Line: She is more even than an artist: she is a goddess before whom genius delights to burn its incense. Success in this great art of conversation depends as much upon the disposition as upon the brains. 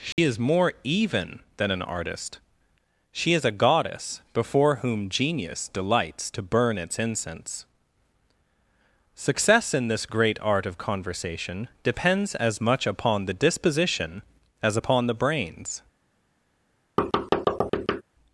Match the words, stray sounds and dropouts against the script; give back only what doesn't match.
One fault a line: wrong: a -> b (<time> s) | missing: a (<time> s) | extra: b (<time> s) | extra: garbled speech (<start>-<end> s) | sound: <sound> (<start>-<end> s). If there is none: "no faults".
sound: dropout (0.1-0.2 s)
sound: thud (17.0-18.0 s)